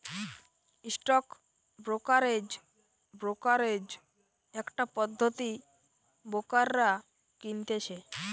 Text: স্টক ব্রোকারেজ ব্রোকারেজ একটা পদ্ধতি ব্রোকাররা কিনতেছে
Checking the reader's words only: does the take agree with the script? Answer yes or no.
yes